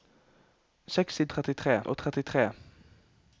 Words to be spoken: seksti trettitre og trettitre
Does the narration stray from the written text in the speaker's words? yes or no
no